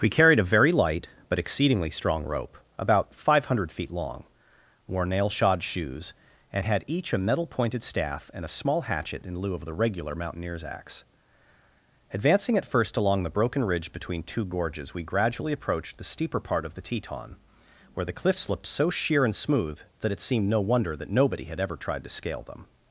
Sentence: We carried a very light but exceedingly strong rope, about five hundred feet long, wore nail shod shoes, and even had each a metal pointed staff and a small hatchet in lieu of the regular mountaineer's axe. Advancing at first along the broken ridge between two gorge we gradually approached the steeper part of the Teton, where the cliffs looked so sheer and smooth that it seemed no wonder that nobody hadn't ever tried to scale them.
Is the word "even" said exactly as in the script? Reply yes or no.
no